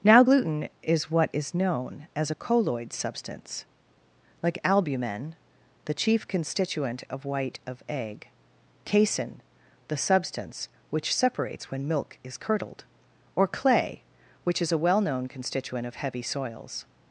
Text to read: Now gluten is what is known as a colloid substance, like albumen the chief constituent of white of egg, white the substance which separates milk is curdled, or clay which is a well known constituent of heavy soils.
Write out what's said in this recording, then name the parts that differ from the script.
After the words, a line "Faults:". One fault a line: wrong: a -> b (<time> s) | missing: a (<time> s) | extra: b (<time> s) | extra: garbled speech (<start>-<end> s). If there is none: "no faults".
Now gluten is what is known as a colloid substance, like albumen the chief constituent of white of egg, casein the substance which separates when milk is curdled, or clay which is a well known constituent of heavy soils.
Faults:
wrong: white -> casein (8.8 s)
extra: when (11.7 s)